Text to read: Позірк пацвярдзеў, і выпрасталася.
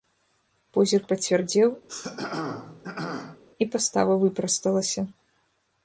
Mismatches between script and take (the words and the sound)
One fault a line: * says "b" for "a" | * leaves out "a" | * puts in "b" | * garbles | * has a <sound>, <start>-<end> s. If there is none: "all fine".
* has a throat clearing, 1.9-3.4 s
* puts in "пастава"